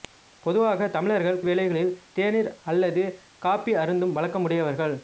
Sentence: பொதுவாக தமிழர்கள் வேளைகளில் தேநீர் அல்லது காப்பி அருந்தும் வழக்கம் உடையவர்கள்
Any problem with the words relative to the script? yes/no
no